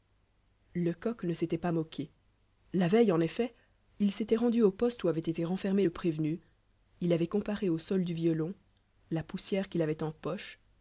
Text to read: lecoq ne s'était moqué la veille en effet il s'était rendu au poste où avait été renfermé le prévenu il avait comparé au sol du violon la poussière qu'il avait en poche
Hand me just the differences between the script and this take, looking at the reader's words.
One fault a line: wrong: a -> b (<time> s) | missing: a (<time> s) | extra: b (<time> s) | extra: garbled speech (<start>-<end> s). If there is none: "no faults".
extra: pas (1.6 s)